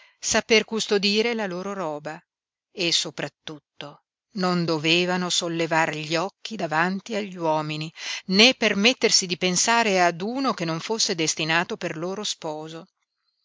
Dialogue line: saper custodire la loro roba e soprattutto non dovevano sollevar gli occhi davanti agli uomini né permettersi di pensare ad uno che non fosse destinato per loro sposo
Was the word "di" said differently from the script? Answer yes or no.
no